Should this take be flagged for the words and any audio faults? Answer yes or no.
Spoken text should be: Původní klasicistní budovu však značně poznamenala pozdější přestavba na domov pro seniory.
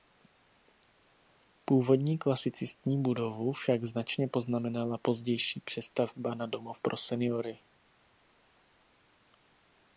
no